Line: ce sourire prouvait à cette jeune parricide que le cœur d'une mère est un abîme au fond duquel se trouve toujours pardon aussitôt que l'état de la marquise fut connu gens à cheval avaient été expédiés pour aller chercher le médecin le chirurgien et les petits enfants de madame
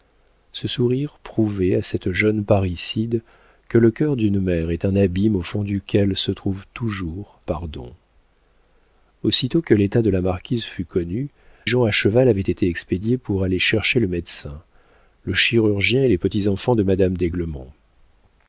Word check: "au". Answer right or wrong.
right